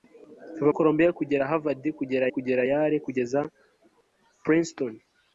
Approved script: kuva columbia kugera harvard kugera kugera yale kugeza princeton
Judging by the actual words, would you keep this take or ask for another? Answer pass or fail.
pass